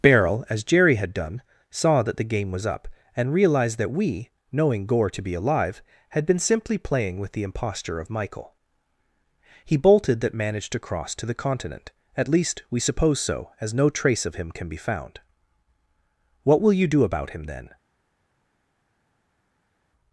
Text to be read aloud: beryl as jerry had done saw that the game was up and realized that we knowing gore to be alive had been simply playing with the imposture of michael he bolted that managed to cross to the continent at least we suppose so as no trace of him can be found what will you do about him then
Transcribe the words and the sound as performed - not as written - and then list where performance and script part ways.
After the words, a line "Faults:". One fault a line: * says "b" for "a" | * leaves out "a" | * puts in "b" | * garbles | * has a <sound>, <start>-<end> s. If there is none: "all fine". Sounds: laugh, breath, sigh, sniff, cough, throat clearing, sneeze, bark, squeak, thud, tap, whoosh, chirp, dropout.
beryl as jerry had done saw that the game was up and realized that we knowing gore to be alive had been simply playing with the imposture of michael he bolted that managed to cross to the continent at least we suppose so as no trace of him can be found what will you do about him then
Faults:
all fine